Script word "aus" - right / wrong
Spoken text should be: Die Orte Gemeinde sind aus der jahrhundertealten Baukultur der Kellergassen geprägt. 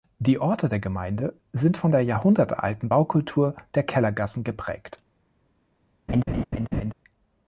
wrong